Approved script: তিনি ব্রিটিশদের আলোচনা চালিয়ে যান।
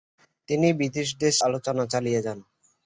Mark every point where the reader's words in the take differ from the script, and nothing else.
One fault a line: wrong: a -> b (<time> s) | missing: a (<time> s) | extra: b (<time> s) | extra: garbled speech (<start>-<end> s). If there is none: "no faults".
no faults